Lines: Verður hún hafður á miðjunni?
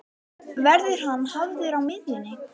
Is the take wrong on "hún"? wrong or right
wrong